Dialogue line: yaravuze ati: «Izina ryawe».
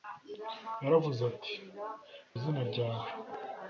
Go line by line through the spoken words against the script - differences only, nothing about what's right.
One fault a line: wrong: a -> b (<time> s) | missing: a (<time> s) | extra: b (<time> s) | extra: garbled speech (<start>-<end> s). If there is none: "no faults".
no faults